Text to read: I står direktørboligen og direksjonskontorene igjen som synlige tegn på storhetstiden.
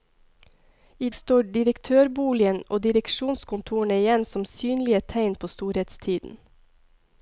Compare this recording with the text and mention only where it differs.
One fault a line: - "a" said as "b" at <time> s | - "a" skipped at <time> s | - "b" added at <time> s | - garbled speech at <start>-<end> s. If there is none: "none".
none